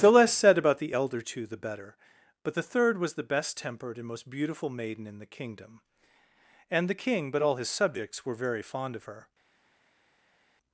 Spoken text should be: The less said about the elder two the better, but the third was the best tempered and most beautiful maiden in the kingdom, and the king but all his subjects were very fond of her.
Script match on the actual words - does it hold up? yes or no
yes